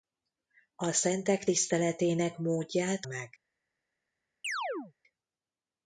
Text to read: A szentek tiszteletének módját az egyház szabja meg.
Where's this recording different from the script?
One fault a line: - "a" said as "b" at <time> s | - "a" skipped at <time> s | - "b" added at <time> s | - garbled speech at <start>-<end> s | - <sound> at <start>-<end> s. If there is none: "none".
- "az egyház szabja" skipped at 3.1 s
- chirp at 4.4-4.9 s